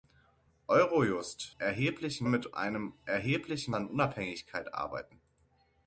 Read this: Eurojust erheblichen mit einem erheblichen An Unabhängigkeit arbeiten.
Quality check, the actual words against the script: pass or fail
pass